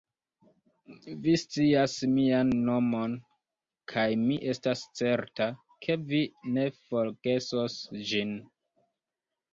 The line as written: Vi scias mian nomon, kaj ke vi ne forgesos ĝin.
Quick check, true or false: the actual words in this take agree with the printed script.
false